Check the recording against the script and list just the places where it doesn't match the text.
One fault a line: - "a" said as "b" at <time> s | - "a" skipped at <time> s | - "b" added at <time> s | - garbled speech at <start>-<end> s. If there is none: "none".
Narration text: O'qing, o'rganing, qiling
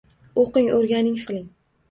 none